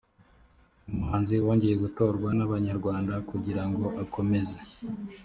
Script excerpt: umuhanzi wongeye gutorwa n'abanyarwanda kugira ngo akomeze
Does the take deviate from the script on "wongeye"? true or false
false